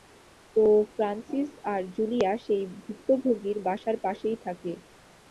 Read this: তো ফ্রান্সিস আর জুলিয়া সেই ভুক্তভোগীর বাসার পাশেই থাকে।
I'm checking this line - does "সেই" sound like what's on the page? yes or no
yes